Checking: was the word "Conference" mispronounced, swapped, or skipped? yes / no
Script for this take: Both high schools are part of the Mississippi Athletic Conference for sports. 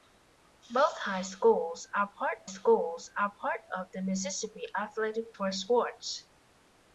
yes